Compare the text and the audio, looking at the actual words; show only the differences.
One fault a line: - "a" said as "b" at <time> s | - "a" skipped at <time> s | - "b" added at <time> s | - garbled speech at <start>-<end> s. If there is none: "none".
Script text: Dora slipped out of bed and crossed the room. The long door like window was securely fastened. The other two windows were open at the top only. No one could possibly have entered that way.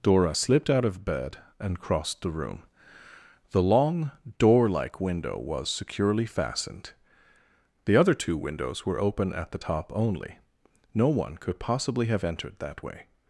none